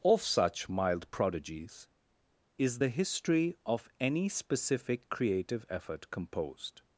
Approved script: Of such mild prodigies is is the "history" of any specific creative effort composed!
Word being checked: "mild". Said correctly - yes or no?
yes